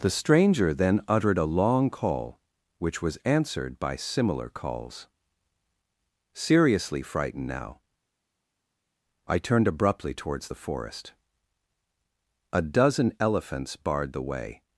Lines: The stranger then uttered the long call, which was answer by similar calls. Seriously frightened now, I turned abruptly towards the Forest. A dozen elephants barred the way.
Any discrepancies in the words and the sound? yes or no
yes